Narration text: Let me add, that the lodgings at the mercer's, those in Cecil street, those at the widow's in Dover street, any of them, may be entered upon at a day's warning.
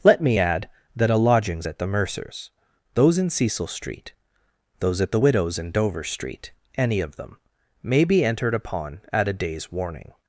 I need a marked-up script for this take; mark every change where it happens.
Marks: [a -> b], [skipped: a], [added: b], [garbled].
Let me add, that [the -> a] lodgings at the mercer's, those in Cecil street, those at the widow's in Dover street, any of them, may be entered upon at a day's warning.